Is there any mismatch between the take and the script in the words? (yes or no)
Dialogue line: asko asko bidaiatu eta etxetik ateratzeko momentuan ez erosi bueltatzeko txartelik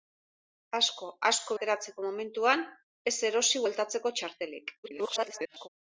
yes